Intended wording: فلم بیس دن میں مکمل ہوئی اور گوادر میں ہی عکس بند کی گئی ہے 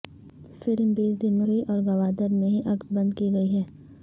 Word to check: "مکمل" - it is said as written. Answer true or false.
false